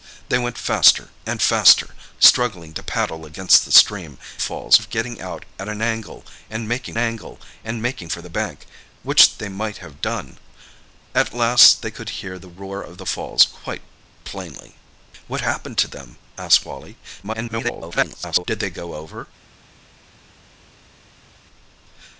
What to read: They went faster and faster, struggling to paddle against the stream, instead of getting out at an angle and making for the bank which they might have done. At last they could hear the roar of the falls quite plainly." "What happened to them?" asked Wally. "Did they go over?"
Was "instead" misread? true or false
true